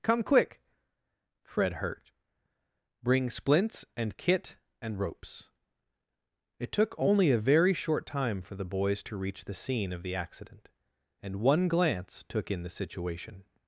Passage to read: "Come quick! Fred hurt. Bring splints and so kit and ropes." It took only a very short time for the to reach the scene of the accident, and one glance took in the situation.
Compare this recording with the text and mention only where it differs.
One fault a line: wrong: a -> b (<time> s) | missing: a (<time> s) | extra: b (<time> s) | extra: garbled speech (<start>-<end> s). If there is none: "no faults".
missing: so (4.2 s)
extra: boys (8.7 s)